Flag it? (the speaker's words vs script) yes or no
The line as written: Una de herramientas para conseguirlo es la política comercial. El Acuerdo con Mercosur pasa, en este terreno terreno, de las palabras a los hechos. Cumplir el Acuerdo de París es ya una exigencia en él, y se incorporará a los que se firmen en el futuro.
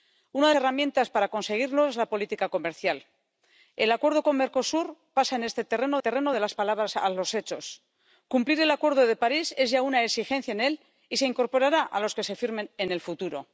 no